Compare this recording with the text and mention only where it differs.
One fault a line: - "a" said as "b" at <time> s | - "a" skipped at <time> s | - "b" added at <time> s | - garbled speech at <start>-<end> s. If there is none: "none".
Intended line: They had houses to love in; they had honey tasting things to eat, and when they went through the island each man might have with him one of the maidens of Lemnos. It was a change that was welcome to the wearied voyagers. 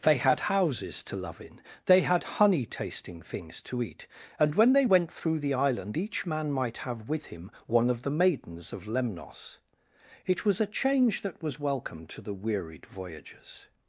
none